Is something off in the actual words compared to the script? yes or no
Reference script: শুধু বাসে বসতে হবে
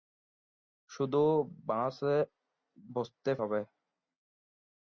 no